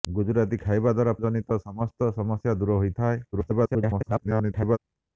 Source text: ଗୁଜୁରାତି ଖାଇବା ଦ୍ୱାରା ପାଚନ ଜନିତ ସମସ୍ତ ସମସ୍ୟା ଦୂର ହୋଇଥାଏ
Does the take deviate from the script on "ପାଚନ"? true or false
true